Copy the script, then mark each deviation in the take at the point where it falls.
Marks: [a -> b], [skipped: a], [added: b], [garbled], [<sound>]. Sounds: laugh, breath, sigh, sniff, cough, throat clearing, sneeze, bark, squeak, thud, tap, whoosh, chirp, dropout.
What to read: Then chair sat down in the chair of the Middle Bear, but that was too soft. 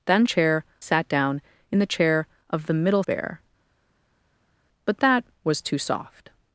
Then chair sat down in the chair of the Middle Bear, but that was too soft.